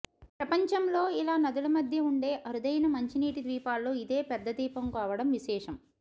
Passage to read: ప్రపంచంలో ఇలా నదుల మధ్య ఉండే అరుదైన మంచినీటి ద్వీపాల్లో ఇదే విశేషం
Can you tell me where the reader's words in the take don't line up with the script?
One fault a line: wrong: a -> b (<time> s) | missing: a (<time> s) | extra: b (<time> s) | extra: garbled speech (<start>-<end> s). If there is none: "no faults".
extra: పెద్ద ద్వీపం కావడం (4.3 s)